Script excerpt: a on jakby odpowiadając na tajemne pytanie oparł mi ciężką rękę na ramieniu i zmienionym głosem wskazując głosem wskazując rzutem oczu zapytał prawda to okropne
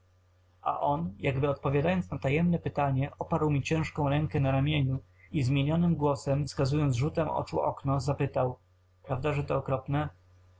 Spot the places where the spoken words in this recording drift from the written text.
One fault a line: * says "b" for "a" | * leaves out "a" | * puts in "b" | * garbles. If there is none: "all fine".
* leaves out "głosem wskazując"
* puts in "okno"
* puts in "że"